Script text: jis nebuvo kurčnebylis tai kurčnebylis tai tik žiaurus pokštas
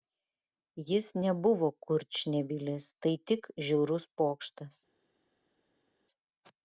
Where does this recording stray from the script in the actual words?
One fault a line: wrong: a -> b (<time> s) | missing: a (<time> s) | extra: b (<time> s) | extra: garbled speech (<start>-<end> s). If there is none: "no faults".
missing: kurčnebylis tai (3.2 s)